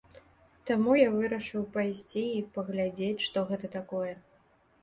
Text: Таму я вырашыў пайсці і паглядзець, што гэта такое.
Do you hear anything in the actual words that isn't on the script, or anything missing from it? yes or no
no